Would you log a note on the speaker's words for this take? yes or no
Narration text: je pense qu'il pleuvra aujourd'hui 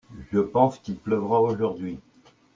no